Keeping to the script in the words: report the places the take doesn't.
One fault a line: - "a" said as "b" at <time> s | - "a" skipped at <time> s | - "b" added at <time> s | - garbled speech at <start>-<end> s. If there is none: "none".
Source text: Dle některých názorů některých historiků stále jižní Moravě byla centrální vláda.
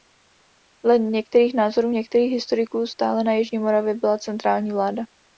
- "na" added at 3.2 s